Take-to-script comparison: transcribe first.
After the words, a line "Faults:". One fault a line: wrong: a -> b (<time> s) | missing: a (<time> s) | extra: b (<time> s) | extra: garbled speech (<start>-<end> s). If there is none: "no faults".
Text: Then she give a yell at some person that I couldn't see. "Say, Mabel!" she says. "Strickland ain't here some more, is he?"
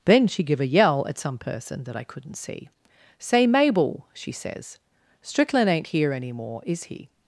Then she give a yell at some person that I couldn't see. "Say, Mabel!" she says. "Strickland ain't here any more, is he?"
Faults:
wrong: some -> any (6.1 s)